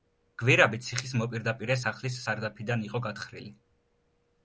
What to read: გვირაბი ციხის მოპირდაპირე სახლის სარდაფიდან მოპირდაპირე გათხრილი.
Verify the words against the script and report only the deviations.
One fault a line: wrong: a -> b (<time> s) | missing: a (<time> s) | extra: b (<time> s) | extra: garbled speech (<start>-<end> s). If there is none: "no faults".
wrong: მოპირდაპირე -> იყო (2.9 s)